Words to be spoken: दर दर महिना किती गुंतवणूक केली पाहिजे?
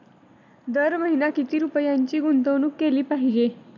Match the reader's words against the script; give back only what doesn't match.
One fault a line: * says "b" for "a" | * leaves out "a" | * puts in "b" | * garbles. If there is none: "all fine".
* leaves out "दर"
* puts in "रुपयांची"